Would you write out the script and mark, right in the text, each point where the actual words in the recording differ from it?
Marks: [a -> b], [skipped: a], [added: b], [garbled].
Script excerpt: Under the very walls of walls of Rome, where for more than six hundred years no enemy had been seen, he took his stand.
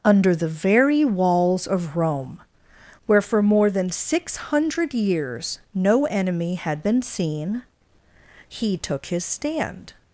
Under the very walls of [skipped: walls of] Rome, where for more than six hundred years no enemy had been seen, he took his stand.